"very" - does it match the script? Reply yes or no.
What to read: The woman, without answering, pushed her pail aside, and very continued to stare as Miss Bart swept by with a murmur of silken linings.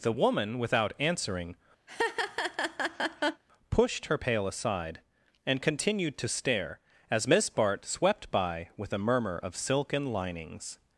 no